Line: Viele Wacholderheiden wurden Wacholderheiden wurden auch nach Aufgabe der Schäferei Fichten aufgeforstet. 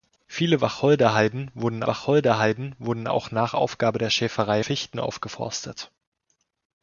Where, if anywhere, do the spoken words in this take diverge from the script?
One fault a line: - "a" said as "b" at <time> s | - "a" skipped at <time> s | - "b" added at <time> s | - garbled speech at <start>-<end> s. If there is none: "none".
none